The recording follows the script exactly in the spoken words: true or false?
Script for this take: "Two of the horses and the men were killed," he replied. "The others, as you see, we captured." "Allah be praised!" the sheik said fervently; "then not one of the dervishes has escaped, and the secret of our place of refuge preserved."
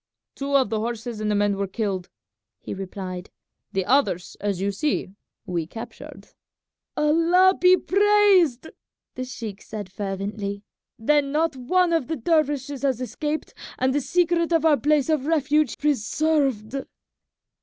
true